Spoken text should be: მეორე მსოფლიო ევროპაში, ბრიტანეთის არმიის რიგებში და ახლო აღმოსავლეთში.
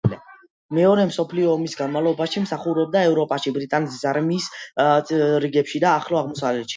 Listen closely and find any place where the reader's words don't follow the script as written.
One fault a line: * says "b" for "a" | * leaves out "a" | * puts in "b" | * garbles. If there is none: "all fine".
* puts in "ომის განმავლობაში მსახურობდა"